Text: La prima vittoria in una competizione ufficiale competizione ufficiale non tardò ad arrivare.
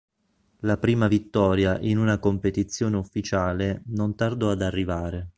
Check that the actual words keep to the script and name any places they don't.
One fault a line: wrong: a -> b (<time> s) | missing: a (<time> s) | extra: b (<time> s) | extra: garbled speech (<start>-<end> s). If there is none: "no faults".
missing: competizione ufficiale (3.8 s)